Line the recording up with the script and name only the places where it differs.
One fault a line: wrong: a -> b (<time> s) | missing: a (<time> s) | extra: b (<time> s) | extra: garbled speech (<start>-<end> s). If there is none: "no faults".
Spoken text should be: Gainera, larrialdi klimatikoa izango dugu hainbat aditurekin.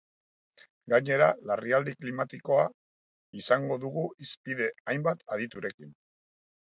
extra: hizpide (4.3 s)